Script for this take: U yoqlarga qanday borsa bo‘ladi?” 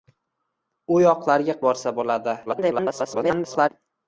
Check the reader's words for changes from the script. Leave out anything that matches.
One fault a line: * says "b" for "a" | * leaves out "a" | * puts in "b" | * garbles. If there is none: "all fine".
* leaves out "qanday"
* garbles